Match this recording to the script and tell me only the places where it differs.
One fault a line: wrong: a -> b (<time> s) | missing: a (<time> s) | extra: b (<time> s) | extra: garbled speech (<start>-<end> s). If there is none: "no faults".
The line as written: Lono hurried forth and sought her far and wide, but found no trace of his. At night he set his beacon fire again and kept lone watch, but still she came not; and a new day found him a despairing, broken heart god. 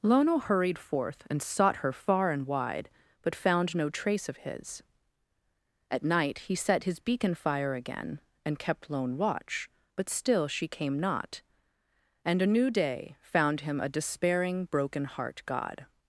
no faults